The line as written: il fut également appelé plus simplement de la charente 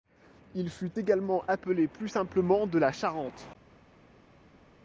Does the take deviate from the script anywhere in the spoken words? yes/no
no